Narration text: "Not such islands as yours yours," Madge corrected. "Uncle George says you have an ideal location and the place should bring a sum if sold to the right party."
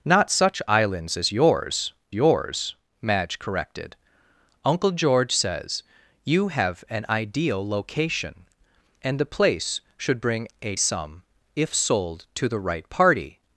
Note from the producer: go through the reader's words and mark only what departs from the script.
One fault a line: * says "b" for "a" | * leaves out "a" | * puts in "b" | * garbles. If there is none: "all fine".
all fine